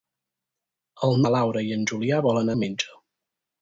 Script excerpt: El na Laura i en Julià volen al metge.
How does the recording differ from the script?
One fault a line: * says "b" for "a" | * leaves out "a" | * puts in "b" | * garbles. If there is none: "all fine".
all fine